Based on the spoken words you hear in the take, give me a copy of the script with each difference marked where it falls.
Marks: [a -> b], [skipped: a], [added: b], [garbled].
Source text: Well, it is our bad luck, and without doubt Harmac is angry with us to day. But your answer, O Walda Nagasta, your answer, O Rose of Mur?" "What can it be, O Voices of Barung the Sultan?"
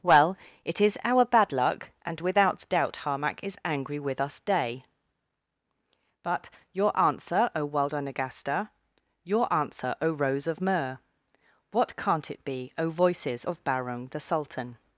Well, it is our bad luck, and without doubt Harmac is angry with us [skipped: to] day. But your answer, O Walda Nagasta, your answer, O Rose of Mur?" "What [can -> can't] it be, O Voices of Barung the Sultan?"